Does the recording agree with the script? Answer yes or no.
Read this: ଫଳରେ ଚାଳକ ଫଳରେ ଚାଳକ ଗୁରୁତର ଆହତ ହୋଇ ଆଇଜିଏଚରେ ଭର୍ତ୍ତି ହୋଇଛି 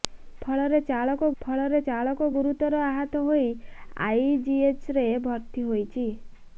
yes